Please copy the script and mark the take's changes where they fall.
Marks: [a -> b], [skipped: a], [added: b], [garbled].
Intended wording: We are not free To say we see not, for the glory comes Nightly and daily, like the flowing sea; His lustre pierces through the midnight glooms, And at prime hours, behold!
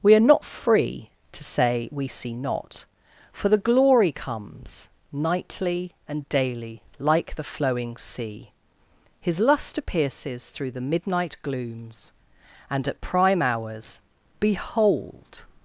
We are not free To say we see not, for the glory comes Nightly and daily, like the flowing sea; His lustre pierces through the midnight glooms, And at prime hours, behold!